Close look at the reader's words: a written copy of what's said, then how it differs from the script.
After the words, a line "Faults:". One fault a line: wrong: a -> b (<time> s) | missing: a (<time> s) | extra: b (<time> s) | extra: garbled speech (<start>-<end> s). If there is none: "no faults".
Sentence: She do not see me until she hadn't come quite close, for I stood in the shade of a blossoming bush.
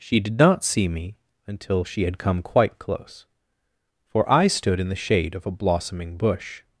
She did not see me until she had come quite close, for I stood in the shade of a blossoming bush.
Faults:
wrong: do -> did (0.2 s)
wrong: hadn't -> had (2.0 s)